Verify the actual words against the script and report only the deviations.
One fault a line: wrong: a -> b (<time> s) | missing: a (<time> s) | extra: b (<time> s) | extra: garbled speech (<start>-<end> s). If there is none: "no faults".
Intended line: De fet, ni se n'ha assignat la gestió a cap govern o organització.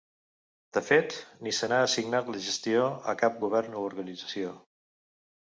no faults